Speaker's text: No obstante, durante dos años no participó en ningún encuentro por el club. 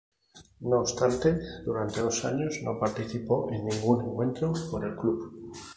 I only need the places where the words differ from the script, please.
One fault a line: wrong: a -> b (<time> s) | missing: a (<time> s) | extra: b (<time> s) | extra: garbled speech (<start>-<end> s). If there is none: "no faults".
no faults